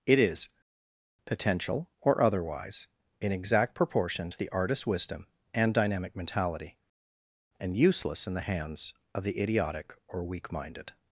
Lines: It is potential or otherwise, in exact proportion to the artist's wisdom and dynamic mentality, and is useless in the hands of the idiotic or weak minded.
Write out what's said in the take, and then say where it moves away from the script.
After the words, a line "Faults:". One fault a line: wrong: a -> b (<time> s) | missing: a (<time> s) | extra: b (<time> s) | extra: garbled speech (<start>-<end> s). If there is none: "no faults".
It is potential or otherwise, in exact proportion to the artist's wisdom and dynamic mentality, and useless in the hands of the idiotic or weak minded.
Faults:
missing: is (7.8 s)